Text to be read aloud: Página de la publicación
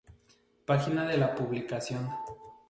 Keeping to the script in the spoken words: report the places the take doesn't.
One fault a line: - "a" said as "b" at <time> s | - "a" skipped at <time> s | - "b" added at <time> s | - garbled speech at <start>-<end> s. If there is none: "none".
none